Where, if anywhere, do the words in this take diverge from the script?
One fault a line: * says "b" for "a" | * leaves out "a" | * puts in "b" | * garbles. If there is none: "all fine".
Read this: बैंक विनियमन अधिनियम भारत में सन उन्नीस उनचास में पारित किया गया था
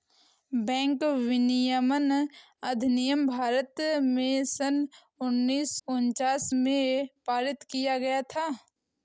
all fine